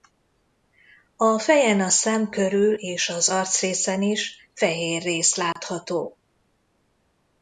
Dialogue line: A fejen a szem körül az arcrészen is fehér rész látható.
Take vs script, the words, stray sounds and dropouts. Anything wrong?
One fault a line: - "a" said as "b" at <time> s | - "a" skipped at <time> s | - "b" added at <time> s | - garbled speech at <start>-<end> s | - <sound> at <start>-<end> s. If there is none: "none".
- "és" added at 2.7 s
- dropout at 5.5-5.6 s